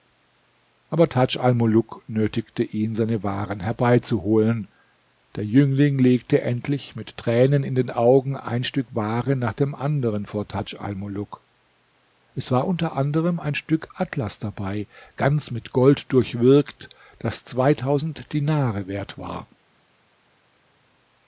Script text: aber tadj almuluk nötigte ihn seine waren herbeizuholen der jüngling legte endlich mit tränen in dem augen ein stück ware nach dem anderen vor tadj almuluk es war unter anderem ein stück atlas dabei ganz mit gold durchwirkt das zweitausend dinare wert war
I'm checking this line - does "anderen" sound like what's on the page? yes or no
yes